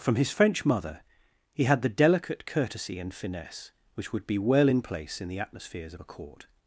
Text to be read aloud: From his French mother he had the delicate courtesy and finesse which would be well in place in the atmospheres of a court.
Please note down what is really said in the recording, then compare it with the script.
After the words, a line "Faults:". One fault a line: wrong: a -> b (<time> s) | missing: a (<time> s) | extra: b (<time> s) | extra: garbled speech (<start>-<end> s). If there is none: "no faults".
From his French mother he had the delicate courtesy and finesse which would be well in place in the atmospheres of a court.
Faults:
no faults